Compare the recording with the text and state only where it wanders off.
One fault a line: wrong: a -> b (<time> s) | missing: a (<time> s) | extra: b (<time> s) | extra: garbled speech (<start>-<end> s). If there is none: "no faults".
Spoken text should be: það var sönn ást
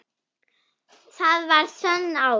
no faults